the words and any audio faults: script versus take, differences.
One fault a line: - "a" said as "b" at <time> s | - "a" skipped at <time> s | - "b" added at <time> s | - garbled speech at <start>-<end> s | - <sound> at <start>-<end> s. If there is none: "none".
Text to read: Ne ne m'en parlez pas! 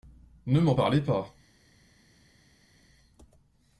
- "ne" skipped at 0.6 s